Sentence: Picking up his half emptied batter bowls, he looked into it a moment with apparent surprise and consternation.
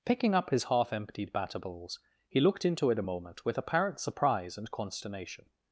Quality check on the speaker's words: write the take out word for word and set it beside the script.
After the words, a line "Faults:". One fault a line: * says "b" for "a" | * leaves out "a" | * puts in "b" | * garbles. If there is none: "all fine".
Picking up his half emptied batter bowls, he looked into it a moment with apparent surprise and consternation.
Faults:
all fine